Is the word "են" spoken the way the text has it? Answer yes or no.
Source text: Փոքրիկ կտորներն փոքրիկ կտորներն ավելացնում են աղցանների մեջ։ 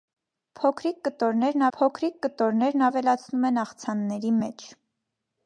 yes